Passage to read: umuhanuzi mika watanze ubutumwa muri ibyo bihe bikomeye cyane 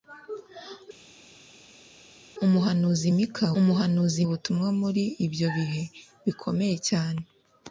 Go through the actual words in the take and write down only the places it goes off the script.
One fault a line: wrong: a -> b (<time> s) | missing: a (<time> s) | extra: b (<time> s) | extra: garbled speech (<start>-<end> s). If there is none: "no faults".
wrong: watanze -> umuhanuzi (3.6 s)